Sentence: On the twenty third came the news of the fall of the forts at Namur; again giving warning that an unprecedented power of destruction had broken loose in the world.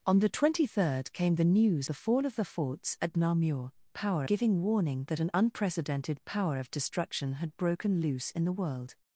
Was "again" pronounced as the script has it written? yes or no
no